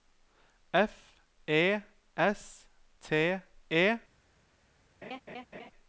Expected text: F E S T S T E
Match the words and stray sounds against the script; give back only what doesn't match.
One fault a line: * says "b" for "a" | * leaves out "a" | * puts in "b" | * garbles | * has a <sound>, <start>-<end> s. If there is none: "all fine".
* leaves out "S T"
* has a laugh, 5.0-5.7 s